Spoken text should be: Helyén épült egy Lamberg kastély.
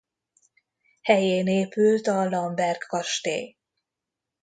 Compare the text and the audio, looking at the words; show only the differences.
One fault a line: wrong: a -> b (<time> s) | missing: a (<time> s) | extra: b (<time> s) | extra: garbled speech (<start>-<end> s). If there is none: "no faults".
wrong: egy -> a (2.1 s)